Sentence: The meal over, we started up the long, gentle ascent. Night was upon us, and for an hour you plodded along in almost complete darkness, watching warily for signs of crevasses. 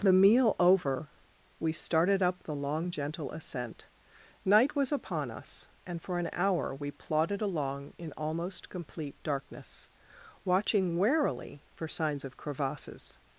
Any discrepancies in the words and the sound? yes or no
yes